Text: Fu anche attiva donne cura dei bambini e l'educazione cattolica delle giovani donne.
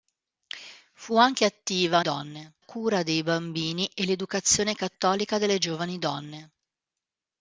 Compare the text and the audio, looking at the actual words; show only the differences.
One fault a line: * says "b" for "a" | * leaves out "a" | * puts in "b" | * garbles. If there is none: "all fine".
all fine